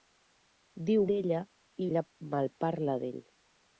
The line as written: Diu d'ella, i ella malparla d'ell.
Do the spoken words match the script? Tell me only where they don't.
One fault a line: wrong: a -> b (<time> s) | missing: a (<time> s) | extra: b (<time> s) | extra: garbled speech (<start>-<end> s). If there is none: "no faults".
no faults